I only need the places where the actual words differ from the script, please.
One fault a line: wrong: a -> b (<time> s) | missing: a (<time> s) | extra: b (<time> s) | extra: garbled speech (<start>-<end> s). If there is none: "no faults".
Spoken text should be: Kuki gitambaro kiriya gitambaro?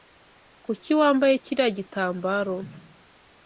wrong: gitambaro -> wambaye (1.0 s)